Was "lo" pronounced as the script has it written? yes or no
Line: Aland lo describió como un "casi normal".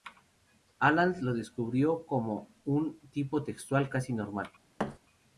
yes